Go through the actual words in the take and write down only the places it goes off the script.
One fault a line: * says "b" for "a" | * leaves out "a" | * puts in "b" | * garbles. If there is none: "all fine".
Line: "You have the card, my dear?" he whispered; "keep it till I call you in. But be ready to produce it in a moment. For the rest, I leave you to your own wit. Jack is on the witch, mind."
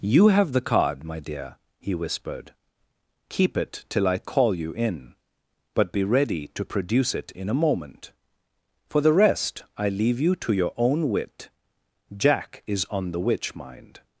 all fine